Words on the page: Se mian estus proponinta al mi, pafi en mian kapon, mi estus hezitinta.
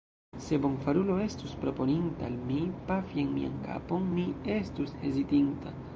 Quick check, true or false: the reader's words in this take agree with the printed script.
false